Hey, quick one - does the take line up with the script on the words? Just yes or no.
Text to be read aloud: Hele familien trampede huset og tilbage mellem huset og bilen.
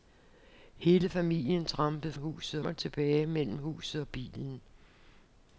yes